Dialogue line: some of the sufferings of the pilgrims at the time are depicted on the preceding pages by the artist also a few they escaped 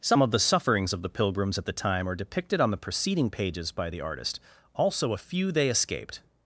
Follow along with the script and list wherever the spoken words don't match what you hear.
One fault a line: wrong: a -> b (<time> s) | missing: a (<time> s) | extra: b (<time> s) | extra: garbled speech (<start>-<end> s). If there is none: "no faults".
no faults